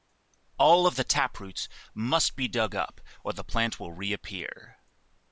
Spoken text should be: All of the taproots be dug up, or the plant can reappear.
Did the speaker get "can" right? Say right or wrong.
wrong